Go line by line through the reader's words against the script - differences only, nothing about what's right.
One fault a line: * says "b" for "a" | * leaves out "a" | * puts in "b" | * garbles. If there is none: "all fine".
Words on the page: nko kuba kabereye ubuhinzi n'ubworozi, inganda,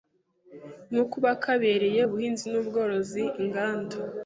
all fine